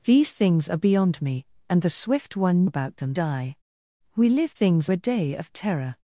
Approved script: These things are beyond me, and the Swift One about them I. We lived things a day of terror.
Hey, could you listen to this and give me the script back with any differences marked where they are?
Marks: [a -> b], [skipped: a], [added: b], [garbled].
These things are beyond me, and the Swift One about them I. We lived things a day of terror.